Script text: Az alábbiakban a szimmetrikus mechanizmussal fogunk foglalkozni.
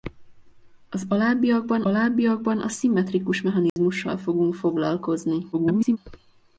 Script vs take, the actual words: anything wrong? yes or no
yes